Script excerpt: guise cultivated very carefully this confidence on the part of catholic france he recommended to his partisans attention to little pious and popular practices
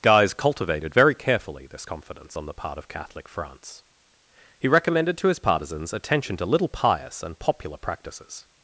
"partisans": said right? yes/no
yes